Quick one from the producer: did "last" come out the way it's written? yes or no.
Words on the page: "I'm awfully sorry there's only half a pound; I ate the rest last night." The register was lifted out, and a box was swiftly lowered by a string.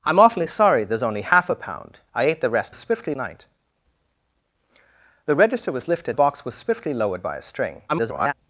no